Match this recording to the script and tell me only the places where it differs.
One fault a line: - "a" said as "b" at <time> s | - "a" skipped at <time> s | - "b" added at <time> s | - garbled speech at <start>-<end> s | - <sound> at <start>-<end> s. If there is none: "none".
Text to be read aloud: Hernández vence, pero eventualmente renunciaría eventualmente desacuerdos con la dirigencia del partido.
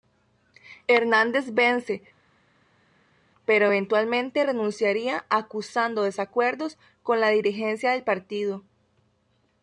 - "eventualmente" said as "acusando" at 5.3 s